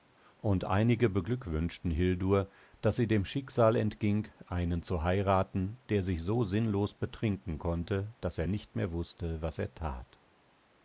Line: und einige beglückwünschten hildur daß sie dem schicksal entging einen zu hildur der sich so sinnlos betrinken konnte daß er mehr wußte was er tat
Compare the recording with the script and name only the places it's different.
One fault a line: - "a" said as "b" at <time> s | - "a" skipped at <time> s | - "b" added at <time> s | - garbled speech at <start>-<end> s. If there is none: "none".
- "hildur" said as "heiraten" at 5.0 s
- "nicht" added at 8.5 s